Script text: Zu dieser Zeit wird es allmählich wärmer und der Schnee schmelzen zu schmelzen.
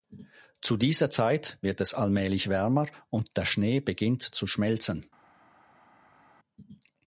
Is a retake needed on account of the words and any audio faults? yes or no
yes